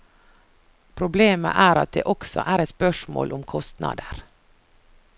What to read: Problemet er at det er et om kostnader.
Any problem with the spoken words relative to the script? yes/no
yes